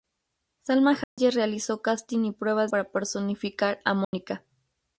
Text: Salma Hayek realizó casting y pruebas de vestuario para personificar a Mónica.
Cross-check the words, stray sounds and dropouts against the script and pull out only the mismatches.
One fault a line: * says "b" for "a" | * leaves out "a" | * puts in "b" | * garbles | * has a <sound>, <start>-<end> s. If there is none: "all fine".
* has a dropout, 1.0-1.2 s
* leaves out "de vestuario"
* has a dropout, 4.0-4.1 s